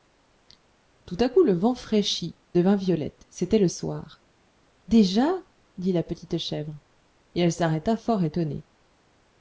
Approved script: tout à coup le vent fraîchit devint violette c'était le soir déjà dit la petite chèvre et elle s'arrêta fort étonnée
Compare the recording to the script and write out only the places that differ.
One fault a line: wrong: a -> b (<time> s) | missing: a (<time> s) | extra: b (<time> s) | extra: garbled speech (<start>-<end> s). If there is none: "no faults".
no faults